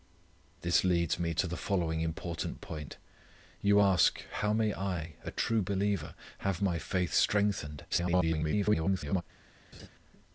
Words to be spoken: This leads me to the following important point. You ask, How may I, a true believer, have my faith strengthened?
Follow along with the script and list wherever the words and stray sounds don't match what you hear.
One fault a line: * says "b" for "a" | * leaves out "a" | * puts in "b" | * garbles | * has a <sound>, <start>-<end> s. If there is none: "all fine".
* garbles
* has a laugh, 9.7-9.9 s